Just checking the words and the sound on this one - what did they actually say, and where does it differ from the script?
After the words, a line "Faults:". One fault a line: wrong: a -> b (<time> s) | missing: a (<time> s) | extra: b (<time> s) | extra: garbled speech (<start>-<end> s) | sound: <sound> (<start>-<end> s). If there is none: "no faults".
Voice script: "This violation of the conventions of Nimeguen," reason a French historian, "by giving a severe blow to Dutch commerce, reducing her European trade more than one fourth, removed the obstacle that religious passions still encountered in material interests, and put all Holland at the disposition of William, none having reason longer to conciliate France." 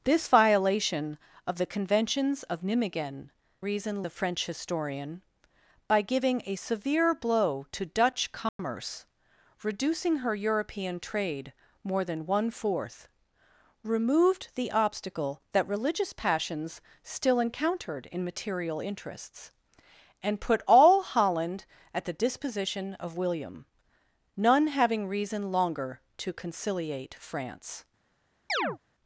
"This violation of the conventions of Nimeguen," reason a French historian, "by giving a severe blow to Dutch commerce, reducing her European trade more than one fourth, removed the obstacle that religious passions still encountered in material interests, and put all Holland at the disposition of William, none having reason longer to conciliate France."
Faults:
sound: dropout (8.5-8.6 s)
sound: chirp (28.5-28.8 s)